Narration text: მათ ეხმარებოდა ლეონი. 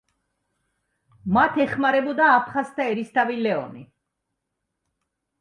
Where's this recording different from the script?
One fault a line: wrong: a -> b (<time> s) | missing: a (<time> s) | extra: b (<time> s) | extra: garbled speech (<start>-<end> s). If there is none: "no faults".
extra: აფხაზთა ერისთავი (2.4 s)